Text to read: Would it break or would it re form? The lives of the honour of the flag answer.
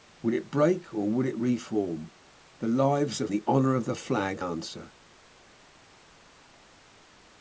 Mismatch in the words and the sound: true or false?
false